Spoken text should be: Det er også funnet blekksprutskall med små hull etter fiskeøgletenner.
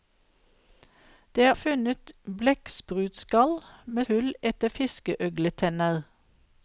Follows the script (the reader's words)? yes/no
no